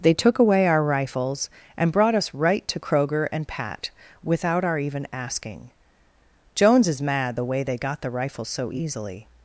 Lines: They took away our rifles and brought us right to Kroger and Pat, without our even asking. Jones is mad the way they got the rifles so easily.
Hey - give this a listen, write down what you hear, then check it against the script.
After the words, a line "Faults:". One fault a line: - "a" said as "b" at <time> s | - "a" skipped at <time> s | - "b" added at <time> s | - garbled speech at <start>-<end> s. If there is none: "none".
They took away our rifles and brought us right to Kroger and Pat, without our even asking. Jones is mad the way they got the rifles so easily.
Faults:
none